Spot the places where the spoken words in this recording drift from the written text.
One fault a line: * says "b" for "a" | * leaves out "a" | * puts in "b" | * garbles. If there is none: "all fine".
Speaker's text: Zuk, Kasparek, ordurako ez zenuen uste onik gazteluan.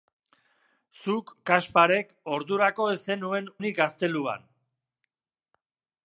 * leaves out "uste"